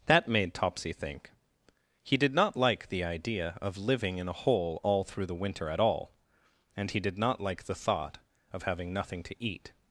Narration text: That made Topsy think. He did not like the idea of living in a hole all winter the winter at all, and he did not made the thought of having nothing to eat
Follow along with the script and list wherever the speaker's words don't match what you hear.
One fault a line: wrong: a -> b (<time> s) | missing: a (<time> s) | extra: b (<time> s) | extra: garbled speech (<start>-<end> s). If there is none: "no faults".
wrong: winter -> through (5.0 s)
wrong: made -> like (7.4 s)